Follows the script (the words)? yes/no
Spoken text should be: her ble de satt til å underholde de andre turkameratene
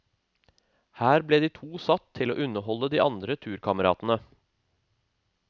no